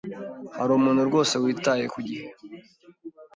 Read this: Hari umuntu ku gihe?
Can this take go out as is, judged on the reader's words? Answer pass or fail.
fail